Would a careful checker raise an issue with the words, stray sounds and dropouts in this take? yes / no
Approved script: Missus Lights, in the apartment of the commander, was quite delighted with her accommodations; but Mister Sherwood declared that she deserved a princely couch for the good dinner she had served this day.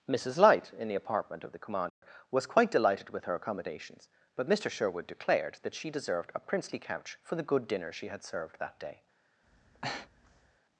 yes